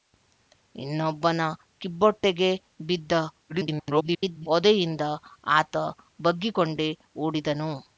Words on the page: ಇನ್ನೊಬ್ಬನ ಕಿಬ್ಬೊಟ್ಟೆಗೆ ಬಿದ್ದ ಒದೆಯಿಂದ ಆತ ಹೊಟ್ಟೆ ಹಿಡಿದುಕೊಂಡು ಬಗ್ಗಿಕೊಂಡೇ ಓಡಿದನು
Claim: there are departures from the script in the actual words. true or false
true